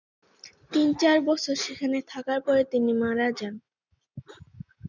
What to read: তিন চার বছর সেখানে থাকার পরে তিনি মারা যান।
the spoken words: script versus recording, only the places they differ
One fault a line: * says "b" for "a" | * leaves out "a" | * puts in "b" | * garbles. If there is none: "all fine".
all fine